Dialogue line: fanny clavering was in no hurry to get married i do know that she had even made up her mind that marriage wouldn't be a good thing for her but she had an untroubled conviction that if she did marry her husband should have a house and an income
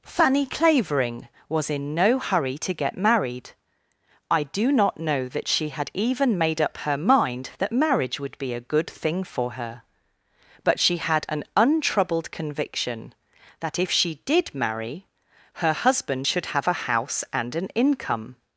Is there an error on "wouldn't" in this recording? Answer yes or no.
yes